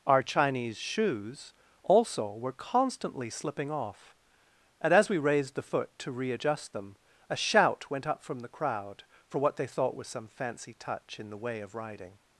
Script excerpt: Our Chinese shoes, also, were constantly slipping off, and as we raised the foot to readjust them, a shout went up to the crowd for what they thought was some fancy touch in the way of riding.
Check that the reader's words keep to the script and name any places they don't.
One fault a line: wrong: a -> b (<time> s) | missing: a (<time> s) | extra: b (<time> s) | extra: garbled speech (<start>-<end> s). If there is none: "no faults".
wrong: to -> from (8.2 s)